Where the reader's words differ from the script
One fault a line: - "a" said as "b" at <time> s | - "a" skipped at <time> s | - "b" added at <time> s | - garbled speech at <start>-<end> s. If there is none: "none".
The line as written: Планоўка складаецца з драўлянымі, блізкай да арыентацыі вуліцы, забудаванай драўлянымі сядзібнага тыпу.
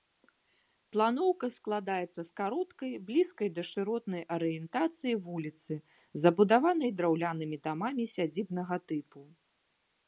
- "драўлянымі" said as "кароткай" at 2.4 s
- "шыротнай" added at 3.7 s
- "дамамі" added at 7.7 s